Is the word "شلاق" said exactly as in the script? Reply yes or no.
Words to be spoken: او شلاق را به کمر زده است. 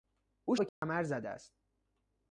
no